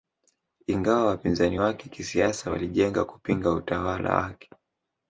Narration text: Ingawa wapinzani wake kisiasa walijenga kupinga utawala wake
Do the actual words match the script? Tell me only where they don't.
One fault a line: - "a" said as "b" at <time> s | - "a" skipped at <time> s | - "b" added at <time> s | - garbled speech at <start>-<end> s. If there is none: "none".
none